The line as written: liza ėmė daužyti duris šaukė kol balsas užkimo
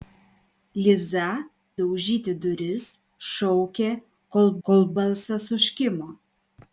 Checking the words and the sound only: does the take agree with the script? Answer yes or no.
no